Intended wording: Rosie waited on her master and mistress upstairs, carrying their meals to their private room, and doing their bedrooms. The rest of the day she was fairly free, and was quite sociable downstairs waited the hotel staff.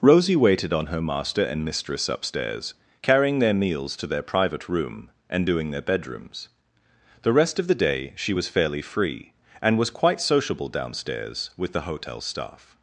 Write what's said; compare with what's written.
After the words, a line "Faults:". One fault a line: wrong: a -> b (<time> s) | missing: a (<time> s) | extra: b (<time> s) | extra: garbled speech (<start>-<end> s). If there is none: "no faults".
Rosie waited on her master and mistress upstairs, carrying their meals to their private room, and doing their bedrooms. The rest of the day she was fairly free, and was quite sociable downstairs with the hotel staff.
Faults:
wrong: waited -> with (11.6 s)